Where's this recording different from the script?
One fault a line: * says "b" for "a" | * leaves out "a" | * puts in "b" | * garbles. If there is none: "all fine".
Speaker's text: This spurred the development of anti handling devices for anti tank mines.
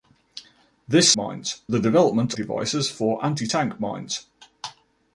* says "mines" for "spurred"
* leaves out "of anti handling"